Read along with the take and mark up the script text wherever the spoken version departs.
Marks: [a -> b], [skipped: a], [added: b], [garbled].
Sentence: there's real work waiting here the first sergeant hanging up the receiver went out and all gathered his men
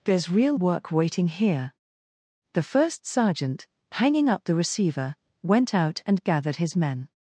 there's real work waiting here the first sergeant hanging up the receiver went out and [skipped: all] gathered his men